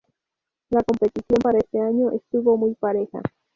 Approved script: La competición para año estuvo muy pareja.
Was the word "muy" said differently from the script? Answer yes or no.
no